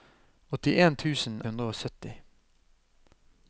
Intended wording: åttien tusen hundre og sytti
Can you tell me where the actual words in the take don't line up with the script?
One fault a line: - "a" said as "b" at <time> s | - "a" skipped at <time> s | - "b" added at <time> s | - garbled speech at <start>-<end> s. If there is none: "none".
none